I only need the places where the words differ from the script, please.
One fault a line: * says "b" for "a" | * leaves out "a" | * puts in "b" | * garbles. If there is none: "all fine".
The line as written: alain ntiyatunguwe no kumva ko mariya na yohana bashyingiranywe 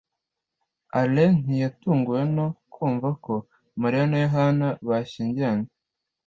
all fine